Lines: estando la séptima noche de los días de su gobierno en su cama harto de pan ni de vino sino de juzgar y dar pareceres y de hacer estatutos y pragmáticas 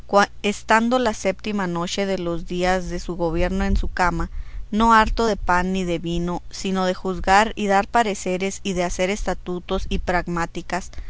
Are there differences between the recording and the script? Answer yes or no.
yes